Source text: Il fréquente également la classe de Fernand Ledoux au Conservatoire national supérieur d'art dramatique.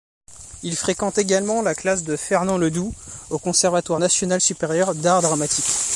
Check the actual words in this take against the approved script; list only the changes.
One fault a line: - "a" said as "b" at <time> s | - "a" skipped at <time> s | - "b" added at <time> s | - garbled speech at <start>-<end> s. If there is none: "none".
none